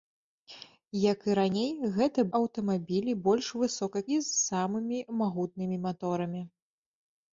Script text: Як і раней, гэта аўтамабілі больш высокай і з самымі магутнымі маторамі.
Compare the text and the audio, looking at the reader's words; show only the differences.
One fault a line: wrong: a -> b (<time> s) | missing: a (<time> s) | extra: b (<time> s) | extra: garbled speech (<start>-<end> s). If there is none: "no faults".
no faults